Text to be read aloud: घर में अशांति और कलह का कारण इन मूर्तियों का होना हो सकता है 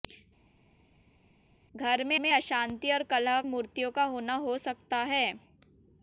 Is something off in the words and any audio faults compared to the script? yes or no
yes